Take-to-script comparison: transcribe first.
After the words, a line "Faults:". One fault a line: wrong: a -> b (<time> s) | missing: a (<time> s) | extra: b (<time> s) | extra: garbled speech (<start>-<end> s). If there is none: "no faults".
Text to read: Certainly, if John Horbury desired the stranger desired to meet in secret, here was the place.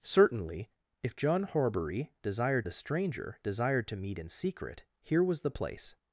Certainly, if John Horbury desired the stranger desired to meet in secret, here was the place.
Faults:
no faults